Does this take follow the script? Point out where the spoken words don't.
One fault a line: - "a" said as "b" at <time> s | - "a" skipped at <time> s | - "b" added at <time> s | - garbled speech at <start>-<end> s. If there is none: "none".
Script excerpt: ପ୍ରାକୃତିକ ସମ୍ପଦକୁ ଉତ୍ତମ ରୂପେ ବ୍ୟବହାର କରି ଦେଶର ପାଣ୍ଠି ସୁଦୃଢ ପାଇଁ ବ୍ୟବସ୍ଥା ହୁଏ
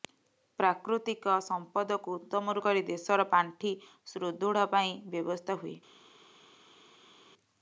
- "ରୂପେ ବ୍ୟବହାର" skipped at 2.5 s